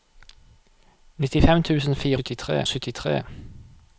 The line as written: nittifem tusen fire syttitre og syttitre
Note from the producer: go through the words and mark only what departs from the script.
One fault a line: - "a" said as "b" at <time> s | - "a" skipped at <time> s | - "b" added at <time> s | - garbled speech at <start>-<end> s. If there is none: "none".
none